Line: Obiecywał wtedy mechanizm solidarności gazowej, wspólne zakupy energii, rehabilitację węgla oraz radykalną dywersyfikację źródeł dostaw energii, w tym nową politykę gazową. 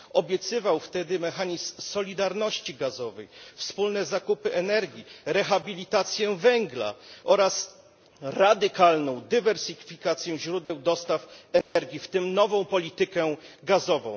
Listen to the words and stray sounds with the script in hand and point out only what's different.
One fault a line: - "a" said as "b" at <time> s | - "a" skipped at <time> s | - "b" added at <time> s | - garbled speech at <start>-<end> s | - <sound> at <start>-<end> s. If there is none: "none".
- dropout at 10.6-10.7 s
- dropout at 11.6-11.8 s